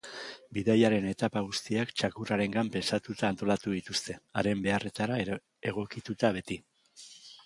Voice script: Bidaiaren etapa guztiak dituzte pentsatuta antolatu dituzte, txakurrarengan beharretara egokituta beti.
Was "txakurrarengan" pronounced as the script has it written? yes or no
no